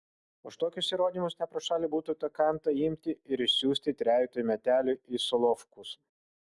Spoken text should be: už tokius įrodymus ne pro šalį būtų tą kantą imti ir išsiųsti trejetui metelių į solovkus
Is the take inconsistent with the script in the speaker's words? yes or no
no